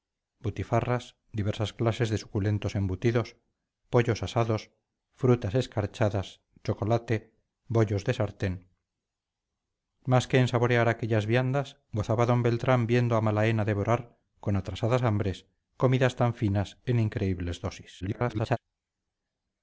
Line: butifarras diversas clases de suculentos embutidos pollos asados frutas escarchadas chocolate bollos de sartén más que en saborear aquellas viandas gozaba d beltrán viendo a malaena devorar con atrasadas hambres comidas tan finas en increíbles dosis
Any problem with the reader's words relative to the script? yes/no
yes